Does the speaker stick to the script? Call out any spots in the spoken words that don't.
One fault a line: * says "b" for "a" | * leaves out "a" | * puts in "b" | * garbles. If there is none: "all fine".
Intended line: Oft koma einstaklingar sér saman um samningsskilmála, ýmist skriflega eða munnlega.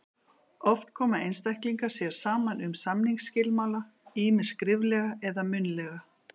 all fine